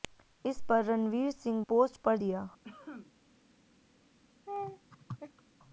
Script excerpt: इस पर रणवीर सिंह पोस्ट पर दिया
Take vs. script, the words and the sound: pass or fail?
fail